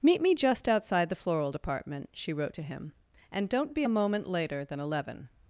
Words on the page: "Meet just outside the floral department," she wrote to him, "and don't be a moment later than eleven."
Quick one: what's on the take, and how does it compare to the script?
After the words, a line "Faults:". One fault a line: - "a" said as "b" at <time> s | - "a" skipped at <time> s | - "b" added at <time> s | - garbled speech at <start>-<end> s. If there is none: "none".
"Meet me just outside the floral department," she wrote to him, "and don't be a moment later than eleven."
Faults:
- "me" added at 0.2 s